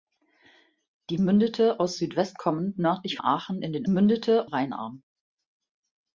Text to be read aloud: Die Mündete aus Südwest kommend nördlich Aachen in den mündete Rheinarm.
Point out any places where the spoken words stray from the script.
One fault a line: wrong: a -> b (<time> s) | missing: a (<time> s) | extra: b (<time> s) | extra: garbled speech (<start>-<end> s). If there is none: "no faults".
no faults